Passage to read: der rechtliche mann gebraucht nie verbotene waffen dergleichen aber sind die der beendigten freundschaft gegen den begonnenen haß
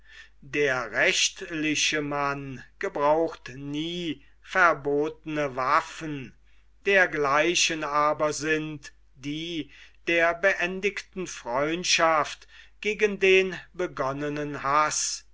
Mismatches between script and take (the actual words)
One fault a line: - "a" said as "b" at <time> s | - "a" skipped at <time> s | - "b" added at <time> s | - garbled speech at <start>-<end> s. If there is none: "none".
none